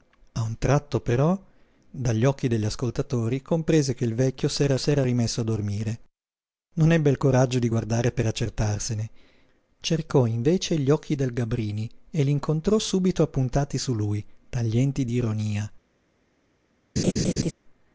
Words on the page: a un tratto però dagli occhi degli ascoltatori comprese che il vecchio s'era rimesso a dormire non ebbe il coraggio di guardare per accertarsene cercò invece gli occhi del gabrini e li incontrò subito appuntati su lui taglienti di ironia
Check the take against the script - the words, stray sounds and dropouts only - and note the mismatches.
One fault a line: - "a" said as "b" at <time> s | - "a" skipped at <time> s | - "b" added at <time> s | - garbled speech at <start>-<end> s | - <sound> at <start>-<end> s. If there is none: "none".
- "s'era" added at 4.7 s
- laugh at 17.0-17.5 s